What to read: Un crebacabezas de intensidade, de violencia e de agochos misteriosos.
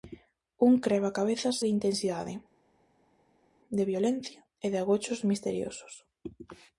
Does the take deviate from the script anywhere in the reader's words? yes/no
no